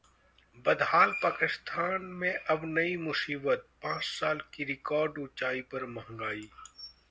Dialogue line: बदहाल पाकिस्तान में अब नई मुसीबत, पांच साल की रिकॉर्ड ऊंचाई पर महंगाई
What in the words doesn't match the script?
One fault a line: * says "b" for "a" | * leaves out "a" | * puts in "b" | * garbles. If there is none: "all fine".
all fine